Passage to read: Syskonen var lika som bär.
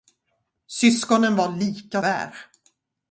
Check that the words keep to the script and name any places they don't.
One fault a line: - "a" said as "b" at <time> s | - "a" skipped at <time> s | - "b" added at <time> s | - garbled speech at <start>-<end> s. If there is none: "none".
- "som" skipped at 2.0 s